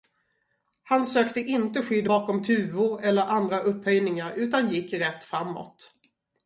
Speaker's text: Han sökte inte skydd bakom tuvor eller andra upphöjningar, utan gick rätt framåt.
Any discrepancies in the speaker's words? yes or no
no